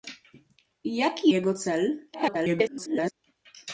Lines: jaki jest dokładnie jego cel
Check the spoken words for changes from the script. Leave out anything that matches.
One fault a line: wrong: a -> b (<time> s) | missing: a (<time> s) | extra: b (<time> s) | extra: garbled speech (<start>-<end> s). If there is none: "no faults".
missing: jest dokładnie (1.3 s)
extra: garbled speech (2.1-3.1 s)